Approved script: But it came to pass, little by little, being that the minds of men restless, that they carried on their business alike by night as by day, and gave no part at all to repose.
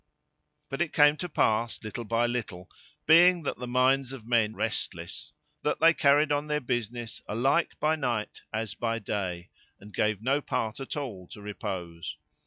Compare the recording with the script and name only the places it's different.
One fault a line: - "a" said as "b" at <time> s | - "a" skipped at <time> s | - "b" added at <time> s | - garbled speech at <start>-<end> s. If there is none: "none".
none